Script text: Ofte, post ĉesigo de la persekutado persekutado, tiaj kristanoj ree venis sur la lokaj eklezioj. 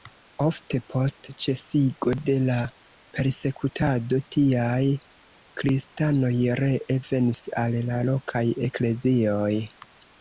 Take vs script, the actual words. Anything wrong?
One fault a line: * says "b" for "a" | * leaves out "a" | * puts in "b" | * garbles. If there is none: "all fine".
* leaves out "persekutado"
* says "al" for "sur"